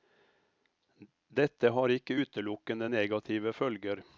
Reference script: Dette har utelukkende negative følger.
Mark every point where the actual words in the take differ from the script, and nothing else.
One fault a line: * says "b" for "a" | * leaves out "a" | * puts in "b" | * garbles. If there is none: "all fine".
* puts in "ikke"